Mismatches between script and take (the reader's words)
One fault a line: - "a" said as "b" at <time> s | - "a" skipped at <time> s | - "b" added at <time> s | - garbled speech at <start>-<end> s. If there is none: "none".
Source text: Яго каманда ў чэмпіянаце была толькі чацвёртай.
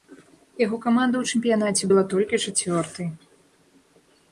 none